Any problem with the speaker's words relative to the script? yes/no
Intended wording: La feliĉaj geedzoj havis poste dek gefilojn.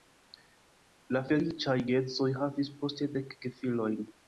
no